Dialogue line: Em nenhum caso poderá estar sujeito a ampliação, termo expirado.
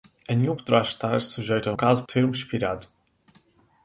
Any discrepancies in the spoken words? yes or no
yes